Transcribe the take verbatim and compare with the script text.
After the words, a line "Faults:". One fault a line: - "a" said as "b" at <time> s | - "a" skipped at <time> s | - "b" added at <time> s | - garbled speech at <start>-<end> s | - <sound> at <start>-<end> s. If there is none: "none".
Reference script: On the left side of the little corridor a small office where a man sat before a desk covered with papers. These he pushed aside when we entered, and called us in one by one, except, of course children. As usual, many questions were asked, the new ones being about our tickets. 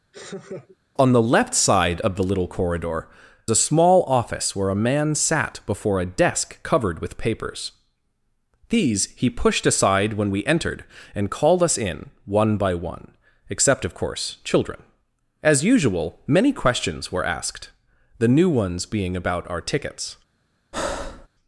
On the left side of the little corridor a small office where a man sat before a desk covered with papers. These he pushed aside when we entered, and called us in one by one, except, of course children. As usual, many questions were asked, the new ones being about our tickets.
Faults:
- laugh at 0.1-0.8 s
- breath at 20.7-21.3 s